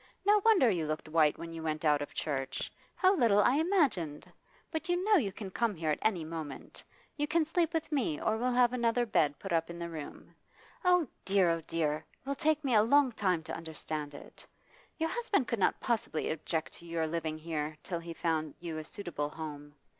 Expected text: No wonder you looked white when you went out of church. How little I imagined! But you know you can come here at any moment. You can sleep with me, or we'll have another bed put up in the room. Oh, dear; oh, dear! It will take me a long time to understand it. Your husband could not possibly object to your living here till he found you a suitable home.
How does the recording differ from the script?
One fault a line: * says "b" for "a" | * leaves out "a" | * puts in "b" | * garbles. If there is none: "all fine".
all fine